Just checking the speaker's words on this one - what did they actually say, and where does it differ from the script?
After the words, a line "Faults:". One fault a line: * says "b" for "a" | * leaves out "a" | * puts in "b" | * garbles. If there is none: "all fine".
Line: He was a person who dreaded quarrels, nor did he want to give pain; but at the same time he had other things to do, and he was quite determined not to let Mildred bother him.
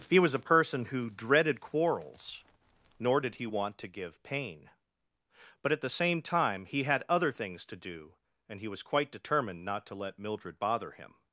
He was a person who dreaded quarrels, nor did he want to give pain; but at the same time he had other things to do, and he was quite determined not to let Mildred bother him.
Faults:
all fine